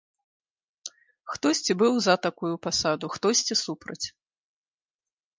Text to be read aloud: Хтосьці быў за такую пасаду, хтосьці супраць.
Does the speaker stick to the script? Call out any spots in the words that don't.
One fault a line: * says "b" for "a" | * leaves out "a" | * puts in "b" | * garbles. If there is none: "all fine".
all fine